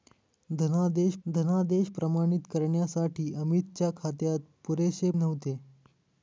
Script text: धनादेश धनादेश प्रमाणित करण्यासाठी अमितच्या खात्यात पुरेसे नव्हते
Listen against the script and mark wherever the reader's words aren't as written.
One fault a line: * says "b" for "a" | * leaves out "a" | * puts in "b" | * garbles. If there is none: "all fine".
all fine